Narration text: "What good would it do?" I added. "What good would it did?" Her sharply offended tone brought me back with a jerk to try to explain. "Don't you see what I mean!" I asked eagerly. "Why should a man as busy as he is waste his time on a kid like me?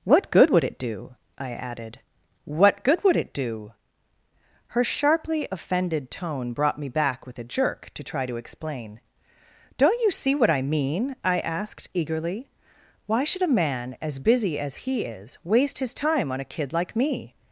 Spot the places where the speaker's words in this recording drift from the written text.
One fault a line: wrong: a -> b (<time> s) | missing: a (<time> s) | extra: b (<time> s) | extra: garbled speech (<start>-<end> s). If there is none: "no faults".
wrong: did -> do (3.3 s)